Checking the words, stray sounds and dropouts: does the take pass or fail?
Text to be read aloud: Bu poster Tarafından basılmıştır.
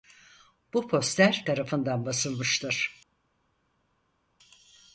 pass